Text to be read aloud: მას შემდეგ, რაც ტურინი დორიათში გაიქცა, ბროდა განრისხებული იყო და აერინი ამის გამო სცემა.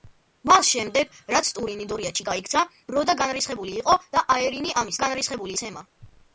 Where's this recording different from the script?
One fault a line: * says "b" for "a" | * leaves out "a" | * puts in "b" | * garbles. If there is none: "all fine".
* says "განრისხებული" for "გამო"